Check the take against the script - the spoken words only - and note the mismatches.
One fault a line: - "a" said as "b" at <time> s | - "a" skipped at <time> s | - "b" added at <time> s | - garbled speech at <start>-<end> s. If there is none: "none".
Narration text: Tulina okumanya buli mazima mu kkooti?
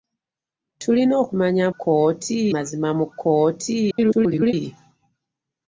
- "buli" said as "kkooti" at 1.7 s
- garbled speech at 3.9-4.5 s